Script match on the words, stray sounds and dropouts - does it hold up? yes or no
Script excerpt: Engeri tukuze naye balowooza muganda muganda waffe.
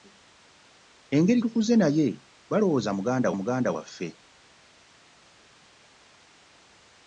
yes